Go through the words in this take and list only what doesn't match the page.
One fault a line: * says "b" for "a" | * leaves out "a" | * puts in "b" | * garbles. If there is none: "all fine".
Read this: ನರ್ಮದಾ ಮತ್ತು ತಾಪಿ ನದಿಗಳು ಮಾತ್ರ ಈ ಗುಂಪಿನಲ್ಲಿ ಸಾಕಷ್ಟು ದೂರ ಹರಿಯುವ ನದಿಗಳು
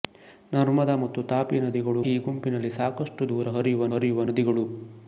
* leaves out "ಮಾತ್ರ"
* puts in "ಹರಿಯುವ"